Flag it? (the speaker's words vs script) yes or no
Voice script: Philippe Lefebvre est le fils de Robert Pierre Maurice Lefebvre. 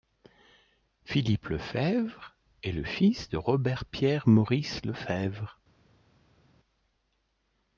no